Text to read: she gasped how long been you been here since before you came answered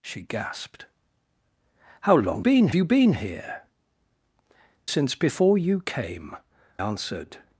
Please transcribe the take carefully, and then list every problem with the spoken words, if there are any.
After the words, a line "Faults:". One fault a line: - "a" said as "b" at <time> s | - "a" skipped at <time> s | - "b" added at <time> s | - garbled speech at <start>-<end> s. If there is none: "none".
she gasped how long been you been here since before you came answered
Faults:
none